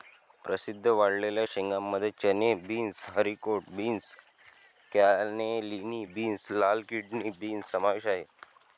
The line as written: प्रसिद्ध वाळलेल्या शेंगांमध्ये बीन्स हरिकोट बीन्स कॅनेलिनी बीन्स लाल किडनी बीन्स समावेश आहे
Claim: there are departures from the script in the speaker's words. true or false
true